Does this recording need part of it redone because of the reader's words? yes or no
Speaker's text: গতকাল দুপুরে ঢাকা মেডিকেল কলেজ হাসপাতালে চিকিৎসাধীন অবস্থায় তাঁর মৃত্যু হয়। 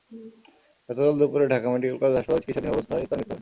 no